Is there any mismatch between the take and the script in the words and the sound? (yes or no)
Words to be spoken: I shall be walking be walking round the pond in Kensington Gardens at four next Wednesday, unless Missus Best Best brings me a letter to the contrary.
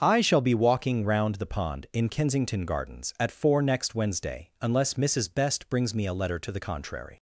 yes